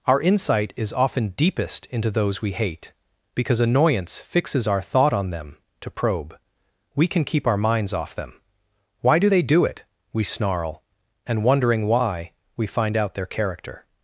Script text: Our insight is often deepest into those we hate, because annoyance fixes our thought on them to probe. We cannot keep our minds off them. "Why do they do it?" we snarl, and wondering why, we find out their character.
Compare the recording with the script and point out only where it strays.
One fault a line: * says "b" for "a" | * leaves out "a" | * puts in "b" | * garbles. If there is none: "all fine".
* says "can" for "cannot"